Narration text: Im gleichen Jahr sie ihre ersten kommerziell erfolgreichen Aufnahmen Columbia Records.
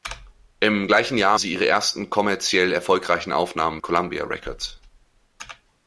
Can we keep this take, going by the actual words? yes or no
yes